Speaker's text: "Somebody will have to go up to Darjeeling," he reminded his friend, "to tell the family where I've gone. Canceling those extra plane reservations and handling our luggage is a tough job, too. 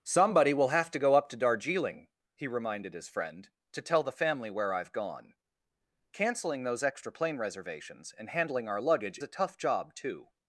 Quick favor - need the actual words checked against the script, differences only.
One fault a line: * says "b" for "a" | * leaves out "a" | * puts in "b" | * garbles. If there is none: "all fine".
* leaves out "is"